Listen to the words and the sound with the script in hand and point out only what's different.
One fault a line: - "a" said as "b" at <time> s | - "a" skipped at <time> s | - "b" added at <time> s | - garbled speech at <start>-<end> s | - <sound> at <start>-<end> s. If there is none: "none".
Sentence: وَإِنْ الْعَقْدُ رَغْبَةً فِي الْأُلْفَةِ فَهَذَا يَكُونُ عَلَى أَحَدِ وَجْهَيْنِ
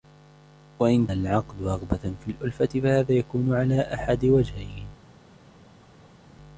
none